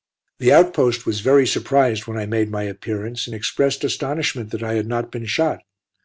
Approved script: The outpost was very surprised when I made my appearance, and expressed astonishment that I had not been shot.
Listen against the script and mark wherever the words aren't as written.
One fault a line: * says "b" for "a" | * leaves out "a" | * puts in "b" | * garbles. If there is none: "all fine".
all fine